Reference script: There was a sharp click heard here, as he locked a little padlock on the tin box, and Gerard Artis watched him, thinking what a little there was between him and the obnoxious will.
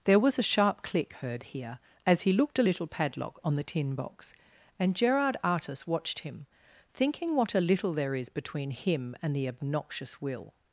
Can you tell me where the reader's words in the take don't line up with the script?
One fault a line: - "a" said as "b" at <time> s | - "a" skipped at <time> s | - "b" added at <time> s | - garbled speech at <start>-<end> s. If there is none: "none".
- "locked" said as "looked" at 2.3 s
- "was" said as "is" at 8.2 s